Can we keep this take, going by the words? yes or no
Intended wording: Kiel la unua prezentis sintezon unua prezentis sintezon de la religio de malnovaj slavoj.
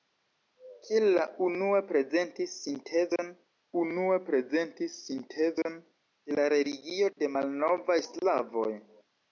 yes